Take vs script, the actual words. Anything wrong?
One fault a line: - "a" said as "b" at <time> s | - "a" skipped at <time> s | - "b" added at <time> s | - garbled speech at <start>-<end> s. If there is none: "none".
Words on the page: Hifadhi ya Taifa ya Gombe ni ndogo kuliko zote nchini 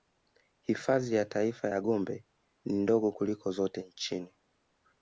none